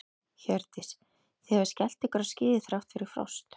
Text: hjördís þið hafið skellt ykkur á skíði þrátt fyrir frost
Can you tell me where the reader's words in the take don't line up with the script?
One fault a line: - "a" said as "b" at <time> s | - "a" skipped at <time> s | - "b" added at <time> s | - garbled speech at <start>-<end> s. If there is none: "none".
none